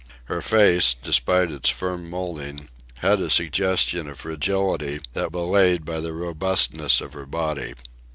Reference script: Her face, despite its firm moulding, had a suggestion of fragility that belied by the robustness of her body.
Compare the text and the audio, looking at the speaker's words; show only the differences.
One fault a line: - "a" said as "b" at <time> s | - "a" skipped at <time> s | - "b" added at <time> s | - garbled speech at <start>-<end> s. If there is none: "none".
none